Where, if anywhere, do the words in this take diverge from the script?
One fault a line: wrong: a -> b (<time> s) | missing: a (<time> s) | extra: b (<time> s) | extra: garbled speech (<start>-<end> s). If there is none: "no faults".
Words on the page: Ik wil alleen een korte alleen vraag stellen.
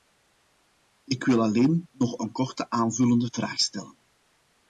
extra: nog (1.9 s)
wrong: alleen -> aanvullende (2.7 s)